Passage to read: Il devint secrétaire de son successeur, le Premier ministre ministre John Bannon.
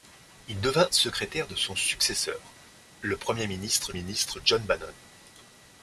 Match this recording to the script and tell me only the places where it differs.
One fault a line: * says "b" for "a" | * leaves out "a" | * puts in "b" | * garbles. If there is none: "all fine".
all fine